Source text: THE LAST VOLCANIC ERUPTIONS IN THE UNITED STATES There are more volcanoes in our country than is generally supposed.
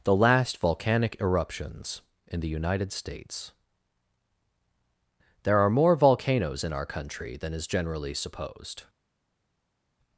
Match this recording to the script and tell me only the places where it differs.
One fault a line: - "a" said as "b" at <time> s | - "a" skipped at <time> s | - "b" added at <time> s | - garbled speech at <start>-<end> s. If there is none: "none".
none